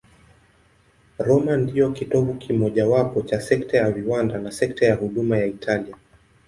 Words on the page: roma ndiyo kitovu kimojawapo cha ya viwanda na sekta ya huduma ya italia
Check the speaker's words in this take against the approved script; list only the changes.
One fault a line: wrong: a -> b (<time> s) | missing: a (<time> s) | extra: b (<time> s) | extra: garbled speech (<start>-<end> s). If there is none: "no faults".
extra: sekta (3.4 s)